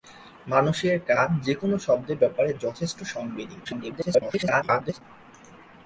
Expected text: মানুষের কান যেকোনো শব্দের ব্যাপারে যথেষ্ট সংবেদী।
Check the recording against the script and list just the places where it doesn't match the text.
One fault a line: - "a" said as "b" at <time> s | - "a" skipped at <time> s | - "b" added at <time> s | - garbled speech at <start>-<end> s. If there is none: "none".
- garbled speech at 3.6-5.0 s